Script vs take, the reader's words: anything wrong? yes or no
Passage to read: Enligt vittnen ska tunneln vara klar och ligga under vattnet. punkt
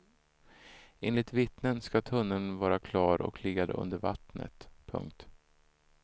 no